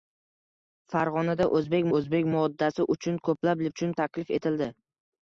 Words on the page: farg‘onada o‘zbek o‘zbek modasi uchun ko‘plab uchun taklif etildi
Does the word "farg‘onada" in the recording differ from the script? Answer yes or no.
no